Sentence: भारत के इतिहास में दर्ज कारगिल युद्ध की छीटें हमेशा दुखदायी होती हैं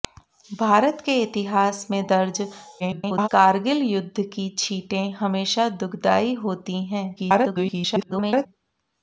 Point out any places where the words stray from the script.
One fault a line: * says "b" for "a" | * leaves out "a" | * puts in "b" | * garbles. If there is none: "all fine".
* garbles
* garbles